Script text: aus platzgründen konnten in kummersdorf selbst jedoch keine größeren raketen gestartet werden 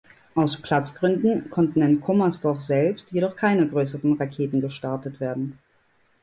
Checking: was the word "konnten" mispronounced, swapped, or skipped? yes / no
no